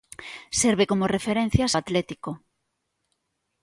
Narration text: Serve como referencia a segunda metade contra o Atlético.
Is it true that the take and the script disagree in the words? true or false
true